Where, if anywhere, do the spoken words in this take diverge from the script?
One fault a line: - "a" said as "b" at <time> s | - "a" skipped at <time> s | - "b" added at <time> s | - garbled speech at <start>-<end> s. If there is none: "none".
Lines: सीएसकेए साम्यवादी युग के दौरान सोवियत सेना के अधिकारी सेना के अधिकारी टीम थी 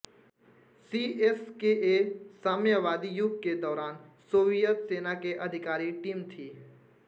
- "सेना के अधिकारी" skipped at 5.9 s